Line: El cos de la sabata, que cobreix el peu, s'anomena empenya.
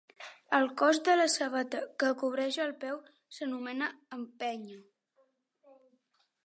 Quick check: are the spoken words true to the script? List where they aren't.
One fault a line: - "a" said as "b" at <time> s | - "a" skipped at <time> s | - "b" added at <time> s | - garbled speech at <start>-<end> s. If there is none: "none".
none